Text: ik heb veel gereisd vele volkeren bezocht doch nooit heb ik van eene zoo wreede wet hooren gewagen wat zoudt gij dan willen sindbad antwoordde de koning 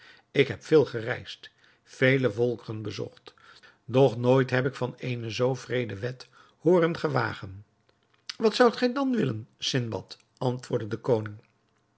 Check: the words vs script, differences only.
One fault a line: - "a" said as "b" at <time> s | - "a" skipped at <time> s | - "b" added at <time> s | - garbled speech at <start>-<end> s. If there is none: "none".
none